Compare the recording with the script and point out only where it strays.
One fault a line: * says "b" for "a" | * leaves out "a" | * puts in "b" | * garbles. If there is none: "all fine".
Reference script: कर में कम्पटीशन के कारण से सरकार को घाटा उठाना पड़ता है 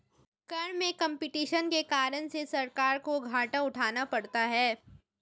all fine